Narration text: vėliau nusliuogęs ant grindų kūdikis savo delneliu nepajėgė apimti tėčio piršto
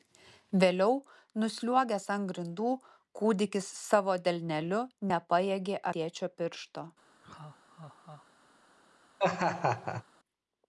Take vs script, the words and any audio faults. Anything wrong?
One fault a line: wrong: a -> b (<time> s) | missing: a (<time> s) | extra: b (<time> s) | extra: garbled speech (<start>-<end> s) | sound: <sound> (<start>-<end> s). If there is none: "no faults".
missing: apimti (5.8 s)
sound: laugh (7.2-8.3 s)
sound: laugh (9.2-10.0 s)